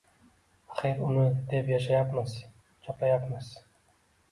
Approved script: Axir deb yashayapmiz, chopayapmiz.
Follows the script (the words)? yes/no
no